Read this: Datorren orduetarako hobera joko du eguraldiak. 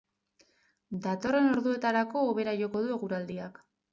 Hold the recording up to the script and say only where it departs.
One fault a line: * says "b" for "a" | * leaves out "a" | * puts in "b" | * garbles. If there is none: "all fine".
all fine